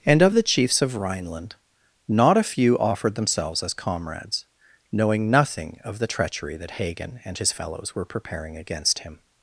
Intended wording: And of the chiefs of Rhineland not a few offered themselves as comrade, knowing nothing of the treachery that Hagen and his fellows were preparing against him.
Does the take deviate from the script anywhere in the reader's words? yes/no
yes